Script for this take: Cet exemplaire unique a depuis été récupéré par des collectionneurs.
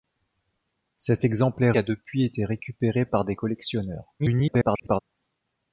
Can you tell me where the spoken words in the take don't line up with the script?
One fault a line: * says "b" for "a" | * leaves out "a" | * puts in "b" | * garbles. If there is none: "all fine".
* leaves out "unique"
* garbles